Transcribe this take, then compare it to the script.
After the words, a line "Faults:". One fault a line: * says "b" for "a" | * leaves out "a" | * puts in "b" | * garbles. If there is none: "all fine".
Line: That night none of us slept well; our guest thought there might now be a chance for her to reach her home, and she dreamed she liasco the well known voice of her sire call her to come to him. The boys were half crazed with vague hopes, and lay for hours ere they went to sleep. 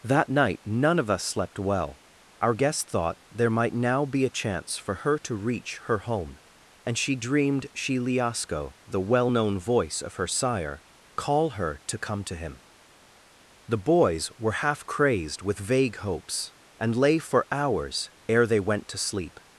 That night none of us slept well; our guest thought there might now be a chance for her to reach her home, and she dreamed she liasco the well known voice of her sire call her to come to him. The boys were half crazed with vague hopes, and lay for hours ere they went to sleep.
Faults:
all fine